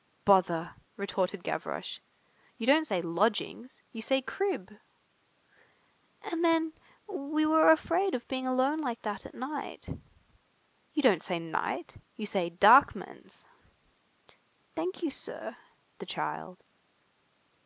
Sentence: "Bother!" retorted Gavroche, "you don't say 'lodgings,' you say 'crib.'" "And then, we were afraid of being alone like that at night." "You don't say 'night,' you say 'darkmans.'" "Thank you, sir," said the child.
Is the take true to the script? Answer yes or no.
no